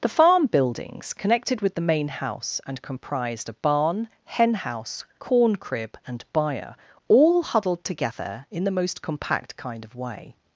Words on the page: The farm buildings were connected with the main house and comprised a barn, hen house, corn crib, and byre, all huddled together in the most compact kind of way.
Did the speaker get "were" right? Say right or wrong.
wrong